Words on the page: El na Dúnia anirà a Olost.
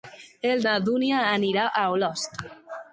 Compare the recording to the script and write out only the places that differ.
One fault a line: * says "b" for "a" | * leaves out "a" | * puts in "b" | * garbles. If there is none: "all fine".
all fine